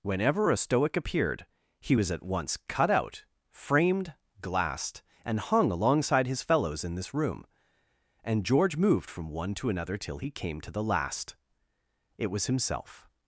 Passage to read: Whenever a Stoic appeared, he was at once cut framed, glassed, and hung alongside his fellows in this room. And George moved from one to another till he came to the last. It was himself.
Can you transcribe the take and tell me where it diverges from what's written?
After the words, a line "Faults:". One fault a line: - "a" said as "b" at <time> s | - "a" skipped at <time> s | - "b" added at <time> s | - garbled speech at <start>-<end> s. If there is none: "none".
Whenever a Stoic appeared, he was at once cut out, framed, glassed, and hung alongside his fellows in this room. And George moved from one to another till he came to the last. It was himself.
Faults:
- "out" added at 2.9 s